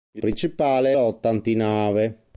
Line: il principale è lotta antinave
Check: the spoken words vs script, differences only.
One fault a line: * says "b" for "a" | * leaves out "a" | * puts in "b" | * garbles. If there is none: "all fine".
all fine